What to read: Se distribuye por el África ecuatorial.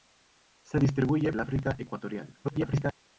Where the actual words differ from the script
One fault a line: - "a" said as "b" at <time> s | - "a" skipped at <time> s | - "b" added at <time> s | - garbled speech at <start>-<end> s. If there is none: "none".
- "por" skipped at 1.3 s
- garbled speech at 2.4-2.9 s